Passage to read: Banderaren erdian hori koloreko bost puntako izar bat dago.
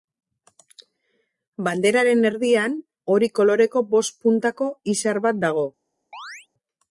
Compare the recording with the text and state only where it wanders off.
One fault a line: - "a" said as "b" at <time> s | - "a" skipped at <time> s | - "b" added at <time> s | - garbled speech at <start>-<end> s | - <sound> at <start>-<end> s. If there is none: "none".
- chirp at 6.1-6.5 s